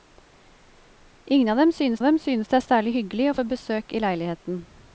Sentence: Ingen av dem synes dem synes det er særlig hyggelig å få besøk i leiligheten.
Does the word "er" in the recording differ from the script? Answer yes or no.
no